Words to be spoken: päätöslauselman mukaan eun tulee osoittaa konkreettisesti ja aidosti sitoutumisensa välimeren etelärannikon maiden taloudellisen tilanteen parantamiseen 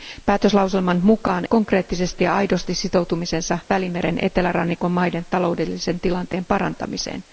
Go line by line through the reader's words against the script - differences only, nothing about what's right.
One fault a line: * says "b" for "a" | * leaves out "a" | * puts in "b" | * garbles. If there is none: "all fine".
* leaves out "eun tulee osoittaa"